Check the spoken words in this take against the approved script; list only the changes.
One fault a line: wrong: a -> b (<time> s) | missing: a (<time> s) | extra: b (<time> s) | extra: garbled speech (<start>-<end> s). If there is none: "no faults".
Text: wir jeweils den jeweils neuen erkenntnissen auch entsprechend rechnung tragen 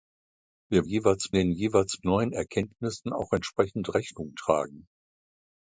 no faults